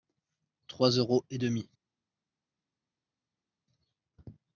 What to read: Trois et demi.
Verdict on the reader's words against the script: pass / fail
fail